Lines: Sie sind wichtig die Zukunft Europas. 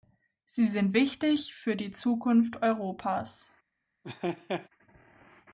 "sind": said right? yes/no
yes